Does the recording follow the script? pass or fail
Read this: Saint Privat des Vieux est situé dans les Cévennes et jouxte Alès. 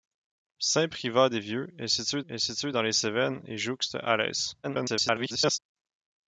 fail